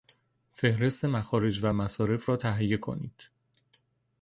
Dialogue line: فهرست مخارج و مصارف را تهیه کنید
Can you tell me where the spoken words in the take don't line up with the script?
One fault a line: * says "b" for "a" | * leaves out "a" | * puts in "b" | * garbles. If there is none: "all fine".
all fine